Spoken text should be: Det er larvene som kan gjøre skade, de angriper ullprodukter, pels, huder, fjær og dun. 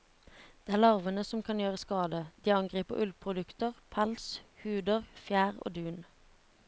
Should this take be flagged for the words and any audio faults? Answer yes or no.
no